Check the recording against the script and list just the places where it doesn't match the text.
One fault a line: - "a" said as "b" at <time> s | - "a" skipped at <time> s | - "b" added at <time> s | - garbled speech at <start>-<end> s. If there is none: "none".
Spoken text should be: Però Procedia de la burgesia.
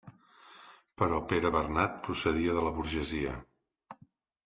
- "Pere Bernat" added at 1.3 s